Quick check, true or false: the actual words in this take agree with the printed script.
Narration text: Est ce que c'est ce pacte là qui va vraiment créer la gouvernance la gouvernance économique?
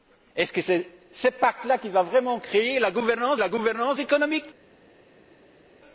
true